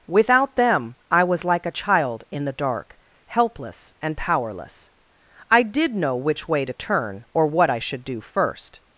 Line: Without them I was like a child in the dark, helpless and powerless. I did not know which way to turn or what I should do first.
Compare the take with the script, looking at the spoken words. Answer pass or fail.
fail